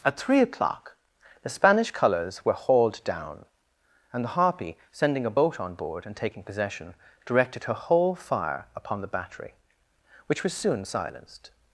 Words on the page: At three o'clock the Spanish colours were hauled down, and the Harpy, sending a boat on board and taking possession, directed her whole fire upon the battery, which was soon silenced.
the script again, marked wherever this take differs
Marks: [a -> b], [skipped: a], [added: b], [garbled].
At three o'clock the Spanish colours were hauled down, and the Harpy, sending a boat on board and taking possession, directed her whole fire upon the battery, which was soon silenced.